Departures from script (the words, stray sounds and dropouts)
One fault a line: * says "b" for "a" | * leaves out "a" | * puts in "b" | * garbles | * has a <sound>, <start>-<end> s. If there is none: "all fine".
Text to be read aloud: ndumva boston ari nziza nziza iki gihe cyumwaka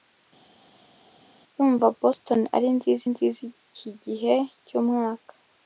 all fine